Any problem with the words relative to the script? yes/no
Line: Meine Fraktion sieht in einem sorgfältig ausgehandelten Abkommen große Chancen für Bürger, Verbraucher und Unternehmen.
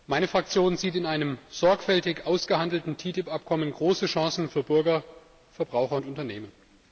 yes